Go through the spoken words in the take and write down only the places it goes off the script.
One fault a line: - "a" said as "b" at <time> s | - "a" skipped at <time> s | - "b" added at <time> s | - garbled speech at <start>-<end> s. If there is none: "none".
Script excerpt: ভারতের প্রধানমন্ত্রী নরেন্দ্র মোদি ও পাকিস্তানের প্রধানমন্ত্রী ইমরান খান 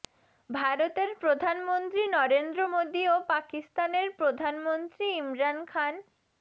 none